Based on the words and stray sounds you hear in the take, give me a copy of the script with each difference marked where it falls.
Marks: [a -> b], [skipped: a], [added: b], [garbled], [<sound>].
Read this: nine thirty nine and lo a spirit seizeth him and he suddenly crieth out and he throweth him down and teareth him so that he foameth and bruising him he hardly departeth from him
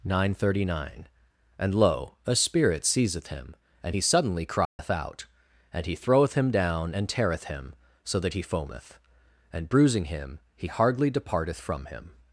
nine thirty nine and lo a spirit seizeth him and he suddenly crieth [dropout] out and he throweth him down and teareth him so that he foameth and bruising him he hardly departeth from him